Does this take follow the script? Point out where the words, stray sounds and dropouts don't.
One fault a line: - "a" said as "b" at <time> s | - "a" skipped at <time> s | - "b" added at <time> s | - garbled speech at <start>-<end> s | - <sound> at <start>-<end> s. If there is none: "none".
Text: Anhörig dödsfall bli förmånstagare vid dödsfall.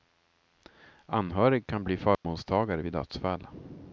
- "dödsfall" said as "kan" at 1.7 s
- dropout at 2.1-2.2 s